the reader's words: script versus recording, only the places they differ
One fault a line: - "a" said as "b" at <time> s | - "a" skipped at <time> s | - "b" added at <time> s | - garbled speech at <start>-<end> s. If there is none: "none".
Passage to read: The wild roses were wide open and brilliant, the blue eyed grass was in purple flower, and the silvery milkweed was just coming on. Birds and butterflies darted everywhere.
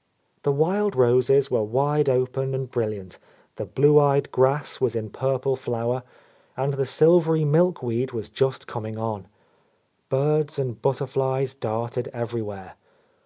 none